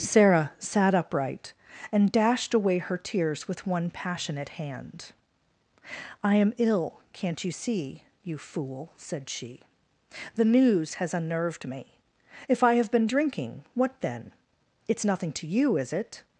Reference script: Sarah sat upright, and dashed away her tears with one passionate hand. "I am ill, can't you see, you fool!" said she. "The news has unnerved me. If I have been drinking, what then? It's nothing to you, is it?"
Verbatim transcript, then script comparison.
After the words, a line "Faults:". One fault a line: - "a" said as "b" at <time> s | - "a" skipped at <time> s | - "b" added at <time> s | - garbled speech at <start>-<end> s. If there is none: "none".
Sarah sat upright, and dashed away her tears with one passionate hand. "I am ill, can't you see, you fool!" said she. "The news has unnerved me. If I have been drinking, what then? It's nothing to you, is it?"
Faults:
none